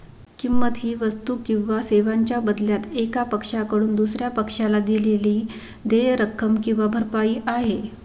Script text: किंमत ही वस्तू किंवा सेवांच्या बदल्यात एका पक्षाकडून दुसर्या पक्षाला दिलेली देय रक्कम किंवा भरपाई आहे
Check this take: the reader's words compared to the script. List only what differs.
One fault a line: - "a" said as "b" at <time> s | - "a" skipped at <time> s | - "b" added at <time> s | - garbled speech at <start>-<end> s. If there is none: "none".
none